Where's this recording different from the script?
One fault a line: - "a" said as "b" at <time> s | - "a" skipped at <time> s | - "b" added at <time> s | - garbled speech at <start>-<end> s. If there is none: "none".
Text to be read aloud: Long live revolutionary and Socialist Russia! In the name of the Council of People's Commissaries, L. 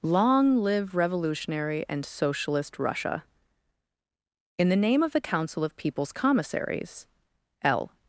none